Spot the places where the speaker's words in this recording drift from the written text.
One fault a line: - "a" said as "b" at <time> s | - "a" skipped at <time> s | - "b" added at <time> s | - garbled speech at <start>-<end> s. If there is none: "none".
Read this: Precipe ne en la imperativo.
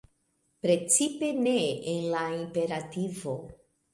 none